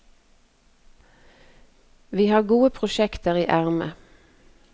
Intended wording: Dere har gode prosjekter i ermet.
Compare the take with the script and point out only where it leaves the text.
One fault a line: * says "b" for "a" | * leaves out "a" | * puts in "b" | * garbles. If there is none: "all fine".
* says "Vi" for "Dere"